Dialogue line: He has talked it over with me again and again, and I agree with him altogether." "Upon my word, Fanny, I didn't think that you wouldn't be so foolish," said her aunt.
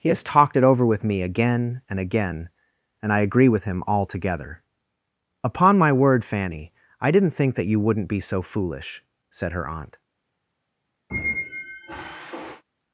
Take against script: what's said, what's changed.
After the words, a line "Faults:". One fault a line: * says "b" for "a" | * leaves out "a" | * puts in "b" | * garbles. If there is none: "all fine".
He has talked it over with me again and again, and I agree with him altogether." "Upon my word, Fanny, I didn't think that you wouldn't be so foolish," said her aunt.
Faults:
all fine